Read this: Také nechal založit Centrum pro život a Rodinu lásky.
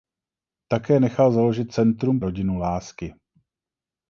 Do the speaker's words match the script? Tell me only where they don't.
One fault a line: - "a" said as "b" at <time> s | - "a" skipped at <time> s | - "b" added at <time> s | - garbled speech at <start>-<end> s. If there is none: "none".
- "pro život a" skipped at 2.2 s